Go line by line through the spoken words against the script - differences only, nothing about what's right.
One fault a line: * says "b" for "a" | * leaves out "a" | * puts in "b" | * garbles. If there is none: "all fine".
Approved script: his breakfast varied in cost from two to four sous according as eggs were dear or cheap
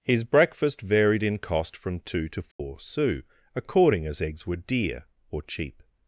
all fine